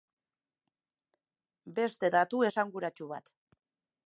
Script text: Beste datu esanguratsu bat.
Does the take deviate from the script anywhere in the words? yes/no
no